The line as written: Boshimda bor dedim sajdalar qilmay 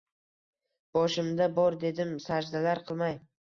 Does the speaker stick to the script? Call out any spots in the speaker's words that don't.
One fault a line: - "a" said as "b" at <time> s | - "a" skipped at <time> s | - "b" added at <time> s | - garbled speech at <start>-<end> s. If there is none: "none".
none